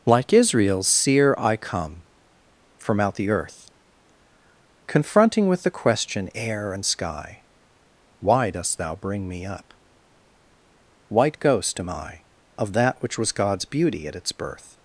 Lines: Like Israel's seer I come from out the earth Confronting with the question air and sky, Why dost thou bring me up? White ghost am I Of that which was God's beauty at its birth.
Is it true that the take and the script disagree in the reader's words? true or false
false